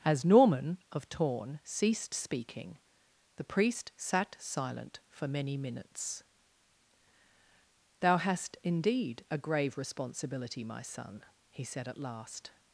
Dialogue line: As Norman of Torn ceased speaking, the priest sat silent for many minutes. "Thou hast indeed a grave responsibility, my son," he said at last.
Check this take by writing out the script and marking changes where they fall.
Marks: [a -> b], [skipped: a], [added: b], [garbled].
As Norman of Torn ceased speaking, the priest sat silent for many minutes. "Thou hast indeed a grave responsibility, my son," he said at last.